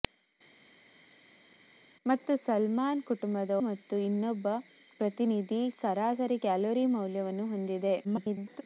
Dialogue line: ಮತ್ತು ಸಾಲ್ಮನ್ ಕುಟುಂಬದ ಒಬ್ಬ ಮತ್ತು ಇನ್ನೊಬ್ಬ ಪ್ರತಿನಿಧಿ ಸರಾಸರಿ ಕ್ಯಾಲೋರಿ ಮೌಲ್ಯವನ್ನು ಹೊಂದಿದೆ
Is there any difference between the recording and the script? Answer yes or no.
yes